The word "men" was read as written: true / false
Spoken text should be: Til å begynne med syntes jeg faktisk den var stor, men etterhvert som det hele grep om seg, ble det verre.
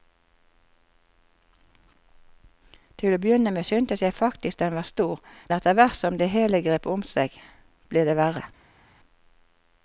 false